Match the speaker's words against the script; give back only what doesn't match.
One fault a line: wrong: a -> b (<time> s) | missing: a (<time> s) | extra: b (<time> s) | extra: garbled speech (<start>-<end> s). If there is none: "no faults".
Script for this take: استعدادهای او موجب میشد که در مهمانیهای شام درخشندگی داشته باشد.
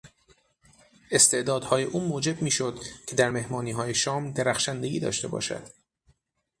no faults